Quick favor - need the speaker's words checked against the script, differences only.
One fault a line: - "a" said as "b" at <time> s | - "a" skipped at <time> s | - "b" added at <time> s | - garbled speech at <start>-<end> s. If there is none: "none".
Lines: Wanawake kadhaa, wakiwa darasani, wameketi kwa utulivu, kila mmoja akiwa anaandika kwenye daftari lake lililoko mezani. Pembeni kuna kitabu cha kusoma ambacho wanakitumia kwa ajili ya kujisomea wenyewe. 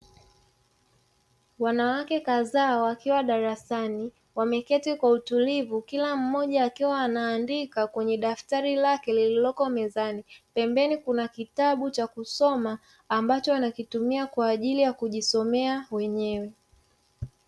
none